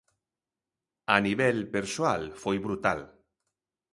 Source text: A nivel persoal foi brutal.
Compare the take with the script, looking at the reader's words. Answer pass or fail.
pass